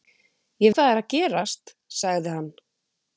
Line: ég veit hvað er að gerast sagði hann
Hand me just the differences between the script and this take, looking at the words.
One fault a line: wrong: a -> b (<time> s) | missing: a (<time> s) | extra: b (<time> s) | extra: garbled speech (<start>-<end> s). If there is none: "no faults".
missing: veit (0.7 s)